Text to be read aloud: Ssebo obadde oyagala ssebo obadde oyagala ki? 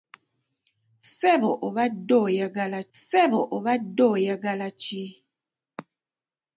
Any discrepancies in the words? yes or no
no